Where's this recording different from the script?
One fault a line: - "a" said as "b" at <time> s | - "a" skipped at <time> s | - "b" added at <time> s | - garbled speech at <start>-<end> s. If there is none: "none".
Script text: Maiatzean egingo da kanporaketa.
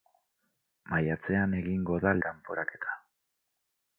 none